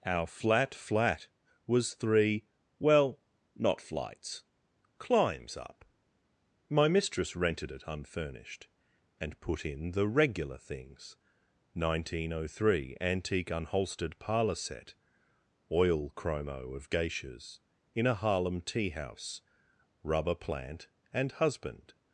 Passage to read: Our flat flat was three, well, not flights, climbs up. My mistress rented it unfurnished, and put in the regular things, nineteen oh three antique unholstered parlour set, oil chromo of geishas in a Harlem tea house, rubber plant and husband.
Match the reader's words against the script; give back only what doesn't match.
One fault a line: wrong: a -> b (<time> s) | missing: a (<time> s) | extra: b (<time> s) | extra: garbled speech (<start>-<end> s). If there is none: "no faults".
no faults